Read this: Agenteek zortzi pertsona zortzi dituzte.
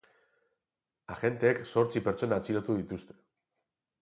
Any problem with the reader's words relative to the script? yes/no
yes